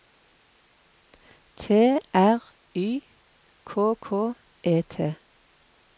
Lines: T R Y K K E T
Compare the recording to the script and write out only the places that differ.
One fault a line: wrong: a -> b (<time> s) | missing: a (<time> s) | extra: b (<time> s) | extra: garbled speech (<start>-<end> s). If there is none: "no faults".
no faults